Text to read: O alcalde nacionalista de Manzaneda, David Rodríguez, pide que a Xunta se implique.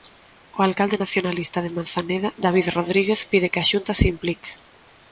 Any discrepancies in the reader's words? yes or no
no